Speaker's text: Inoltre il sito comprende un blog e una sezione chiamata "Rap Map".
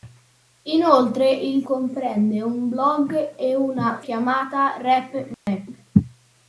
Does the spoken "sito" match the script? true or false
false